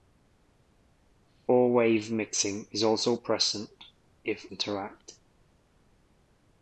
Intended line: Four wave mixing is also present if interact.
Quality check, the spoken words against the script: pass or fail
pass